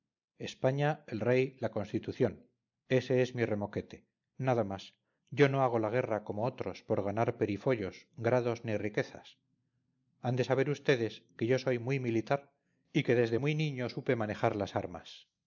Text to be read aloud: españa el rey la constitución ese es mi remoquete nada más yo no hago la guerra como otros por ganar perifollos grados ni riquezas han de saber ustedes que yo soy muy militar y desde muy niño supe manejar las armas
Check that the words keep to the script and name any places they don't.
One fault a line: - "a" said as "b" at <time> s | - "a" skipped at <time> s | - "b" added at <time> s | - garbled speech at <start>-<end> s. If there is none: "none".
- "que" added at 13.0 s